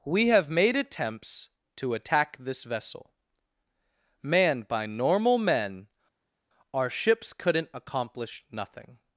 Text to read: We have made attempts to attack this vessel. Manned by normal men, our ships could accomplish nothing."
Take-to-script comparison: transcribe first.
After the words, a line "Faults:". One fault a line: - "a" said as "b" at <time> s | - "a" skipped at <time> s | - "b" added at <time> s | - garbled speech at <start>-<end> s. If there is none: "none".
We have made attempts to attack this vessel. Manned by normal men, our ships couldn't accomplish nothing."
Faults:
- "could" said as "couldn't" at 7.3 s